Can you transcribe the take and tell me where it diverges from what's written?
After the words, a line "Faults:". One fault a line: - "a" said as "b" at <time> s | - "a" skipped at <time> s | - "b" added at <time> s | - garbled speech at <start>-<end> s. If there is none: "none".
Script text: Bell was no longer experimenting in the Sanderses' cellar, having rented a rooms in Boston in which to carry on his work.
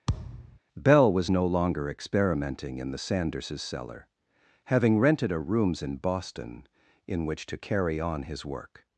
Bell was no longer experimenting in the Sanderses' cellar, having rented a rooms in Boston in which to carry on his work.
Faults:
none